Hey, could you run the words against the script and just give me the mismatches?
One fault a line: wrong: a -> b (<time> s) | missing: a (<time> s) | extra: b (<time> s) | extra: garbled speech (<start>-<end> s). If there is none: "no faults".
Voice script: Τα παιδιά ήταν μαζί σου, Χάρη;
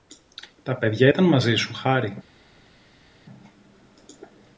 no faults